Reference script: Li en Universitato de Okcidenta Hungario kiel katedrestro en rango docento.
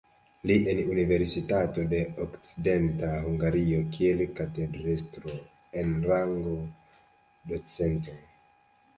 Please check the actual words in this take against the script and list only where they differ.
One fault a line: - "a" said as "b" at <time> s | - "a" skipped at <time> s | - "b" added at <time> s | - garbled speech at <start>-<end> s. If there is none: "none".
none